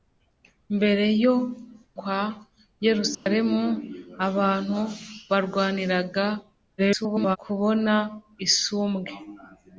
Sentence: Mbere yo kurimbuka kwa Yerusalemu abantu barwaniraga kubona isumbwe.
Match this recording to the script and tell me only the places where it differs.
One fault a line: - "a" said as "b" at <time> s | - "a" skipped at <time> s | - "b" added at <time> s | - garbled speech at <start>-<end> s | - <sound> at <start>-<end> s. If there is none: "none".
- "kurimbuka" skipped at 1.4 s
- dropout at 3.1-3.3 s
- garbled speech at 6.8-7.4 s